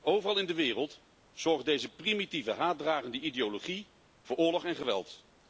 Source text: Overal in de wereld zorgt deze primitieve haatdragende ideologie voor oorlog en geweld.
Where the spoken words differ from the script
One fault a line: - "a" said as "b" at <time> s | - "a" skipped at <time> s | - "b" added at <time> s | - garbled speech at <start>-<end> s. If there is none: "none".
none